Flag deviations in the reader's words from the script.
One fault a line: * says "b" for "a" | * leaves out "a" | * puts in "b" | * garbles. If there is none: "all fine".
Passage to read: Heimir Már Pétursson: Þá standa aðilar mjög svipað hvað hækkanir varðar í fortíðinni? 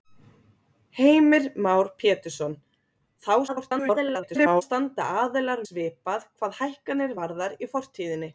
* garbles
* leaves out "mjög"